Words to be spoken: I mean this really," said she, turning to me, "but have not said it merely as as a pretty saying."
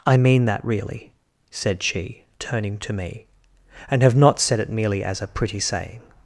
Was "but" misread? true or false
true